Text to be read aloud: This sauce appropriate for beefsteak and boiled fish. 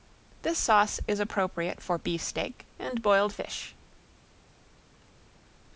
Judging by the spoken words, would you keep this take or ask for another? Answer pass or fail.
fail